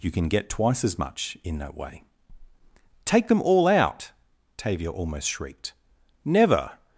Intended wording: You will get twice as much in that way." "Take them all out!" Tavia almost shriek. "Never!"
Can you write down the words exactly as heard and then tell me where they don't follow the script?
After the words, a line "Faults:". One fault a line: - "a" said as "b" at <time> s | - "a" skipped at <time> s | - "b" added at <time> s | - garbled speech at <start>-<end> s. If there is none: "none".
You can get twice as much in that way." "Take them all out!" Tavia almost shrieked. "Never!"
Faults:
- "will" said as "can" at 0.1 s
- "shriek" said as "shrieked" at 5.3 s